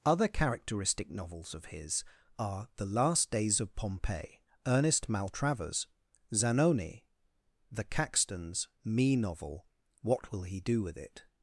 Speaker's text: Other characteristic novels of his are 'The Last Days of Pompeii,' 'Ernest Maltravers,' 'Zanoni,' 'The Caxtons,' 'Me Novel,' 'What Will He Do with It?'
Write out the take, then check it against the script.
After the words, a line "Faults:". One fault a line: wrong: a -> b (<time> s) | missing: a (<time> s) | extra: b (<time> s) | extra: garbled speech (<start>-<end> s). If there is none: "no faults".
Other characteristic novels of his are 'The Last Days of Pompeii,' 'Ernest Maltravers,' 'Zanoni,' 'The Caxtons,' 'Me Novel,' 'What Will He Do with It?'
Faults:
no faults